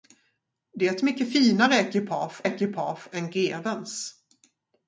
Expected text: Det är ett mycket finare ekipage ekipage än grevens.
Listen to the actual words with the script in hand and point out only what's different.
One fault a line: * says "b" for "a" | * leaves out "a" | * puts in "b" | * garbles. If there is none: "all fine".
all fine